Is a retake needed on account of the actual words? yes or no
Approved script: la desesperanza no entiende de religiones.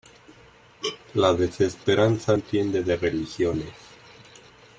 yes